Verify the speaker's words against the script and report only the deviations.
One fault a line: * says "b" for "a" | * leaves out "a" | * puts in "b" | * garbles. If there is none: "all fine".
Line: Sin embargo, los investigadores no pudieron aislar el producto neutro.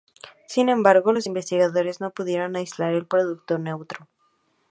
all fine